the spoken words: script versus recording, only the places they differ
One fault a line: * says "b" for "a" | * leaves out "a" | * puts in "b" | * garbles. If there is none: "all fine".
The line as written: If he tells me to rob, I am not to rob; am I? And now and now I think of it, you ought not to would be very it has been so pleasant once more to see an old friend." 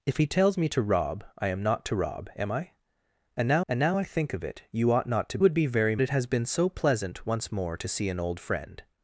all fine